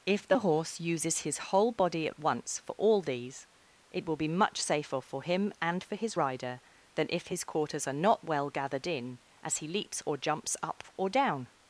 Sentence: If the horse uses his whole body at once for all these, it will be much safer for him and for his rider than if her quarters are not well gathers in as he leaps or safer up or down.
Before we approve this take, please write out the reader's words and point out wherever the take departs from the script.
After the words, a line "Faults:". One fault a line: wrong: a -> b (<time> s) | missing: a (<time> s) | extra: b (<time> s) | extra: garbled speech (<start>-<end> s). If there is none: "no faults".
If the horse uses his whole body at once for all these, it will be much safer for him and for his rider than if his quarters are not well gathered in as he leaps or jumps up or down.
Faults:
wrong: her -> his (7.3 s)
wrong: gathers -> gathered (8.5 s)
wrong: safer -> jumps (10.2 s)